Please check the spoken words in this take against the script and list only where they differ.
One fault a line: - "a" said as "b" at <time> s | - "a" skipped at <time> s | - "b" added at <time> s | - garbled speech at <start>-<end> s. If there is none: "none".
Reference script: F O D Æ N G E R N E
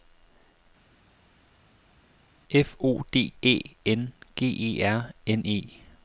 none